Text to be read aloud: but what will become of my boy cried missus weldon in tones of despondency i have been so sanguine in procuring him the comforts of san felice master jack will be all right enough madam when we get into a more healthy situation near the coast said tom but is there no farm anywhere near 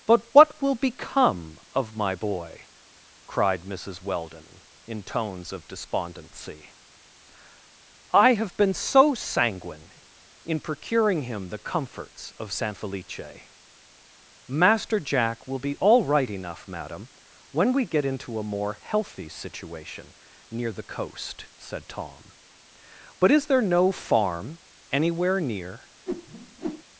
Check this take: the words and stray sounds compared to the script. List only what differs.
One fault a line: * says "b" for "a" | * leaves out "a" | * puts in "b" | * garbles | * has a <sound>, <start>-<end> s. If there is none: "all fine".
* has a whoosh, 26.1-26.8 s